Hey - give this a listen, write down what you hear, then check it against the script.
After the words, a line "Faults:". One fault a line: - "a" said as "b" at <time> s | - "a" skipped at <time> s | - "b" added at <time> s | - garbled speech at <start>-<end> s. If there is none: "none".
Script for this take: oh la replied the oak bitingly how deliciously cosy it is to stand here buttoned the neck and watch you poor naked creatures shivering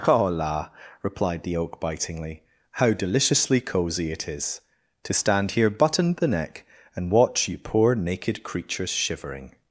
oh la replied the oak bitingly how deliciously cosy it is to stand here buttoned the neck and watch you poor naked creatures shivering
Faults:
none